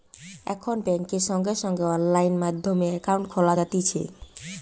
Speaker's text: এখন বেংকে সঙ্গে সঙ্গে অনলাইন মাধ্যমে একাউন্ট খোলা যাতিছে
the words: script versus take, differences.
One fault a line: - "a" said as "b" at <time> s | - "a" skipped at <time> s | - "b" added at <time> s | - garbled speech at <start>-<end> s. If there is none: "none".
none